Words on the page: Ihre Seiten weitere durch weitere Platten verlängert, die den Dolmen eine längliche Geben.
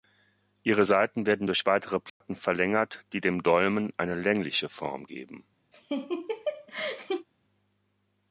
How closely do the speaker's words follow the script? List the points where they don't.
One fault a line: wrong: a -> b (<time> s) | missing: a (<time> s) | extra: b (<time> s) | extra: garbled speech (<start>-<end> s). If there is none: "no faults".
wrong: weitere -> werden (1.3 s)
wrong: den -> dem (3.2 s)
extra: Form (4.7 s)